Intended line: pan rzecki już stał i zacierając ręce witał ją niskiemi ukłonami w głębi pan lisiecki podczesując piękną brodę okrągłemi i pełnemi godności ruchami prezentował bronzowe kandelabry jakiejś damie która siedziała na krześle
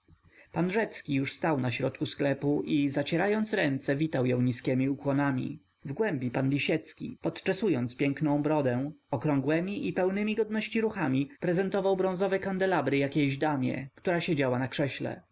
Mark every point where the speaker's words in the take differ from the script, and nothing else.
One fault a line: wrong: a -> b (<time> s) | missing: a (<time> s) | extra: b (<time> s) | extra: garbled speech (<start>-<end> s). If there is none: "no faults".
extra: na środku sklepu (1.6 s)